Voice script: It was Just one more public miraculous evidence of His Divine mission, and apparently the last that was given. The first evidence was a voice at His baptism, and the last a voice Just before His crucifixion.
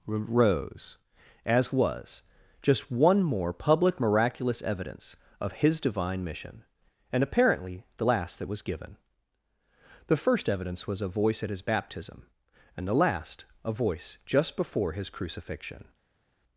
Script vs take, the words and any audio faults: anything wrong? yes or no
yes